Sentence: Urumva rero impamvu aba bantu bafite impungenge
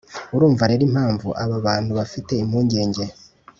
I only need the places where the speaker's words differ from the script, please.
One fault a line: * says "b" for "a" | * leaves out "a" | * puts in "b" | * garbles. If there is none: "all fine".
all fine